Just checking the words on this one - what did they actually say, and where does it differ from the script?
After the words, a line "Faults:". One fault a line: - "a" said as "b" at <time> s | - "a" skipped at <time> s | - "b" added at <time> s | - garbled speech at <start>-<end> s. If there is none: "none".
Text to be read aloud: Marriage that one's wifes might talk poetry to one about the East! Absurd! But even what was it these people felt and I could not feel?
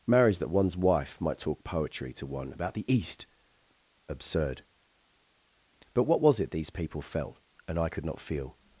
Marriage that one's wife might talk poetry to one about the East! Absurd! But what was it these people felt and I could not feel?
Faults:
- "wifes" said as "wife" at 0.8 s
- "even" skipped at 6.0 s